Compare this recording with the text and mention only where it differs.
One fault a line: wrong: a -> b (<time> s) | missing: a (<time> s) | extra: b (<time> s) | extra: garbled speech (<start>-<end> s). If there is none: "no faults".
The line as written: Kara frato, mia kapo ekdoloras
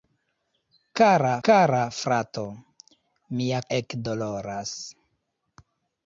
extra: kara (1.5 s)
missing: kapo (3.6 s)